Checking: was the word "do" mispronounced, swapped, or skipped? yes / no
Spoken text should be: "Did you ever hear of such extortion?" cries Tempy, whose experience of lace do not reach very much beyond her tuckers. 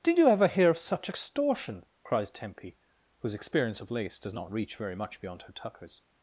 yes